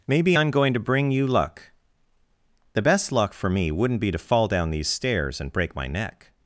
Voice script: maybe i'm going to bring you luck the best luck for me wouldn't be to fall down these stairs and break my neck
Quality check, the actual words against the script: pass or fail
pass